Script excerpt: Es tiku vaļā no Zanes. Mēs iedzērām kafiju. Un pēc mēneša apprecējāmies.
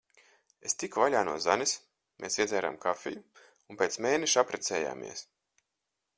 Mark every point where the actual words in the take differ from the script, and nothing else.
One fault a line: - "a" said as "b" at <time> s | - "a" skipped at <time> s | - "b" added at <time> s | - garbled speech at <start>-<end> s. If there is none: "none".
none